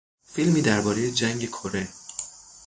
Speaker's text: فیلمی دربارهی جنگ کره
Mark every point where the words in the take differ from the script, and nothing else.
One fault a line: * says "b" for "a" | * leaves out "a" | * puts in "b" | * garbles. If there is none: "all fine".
all fine